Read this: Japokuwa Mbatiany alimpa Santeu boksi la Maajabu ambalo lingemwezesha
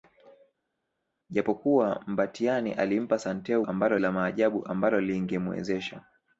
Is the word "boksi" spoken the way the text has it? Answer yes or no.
no